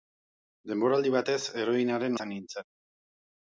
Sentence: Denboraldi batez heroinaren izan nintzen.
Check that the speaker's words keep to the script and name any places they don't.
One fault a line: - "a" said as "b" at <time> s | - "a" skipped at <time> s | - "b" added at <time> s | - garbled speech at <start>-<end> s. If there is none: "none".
none